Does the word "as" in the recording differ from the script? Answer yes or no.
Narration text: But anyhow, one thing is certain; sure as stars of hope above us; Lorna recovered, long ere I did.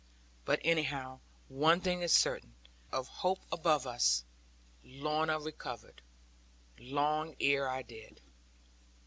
yes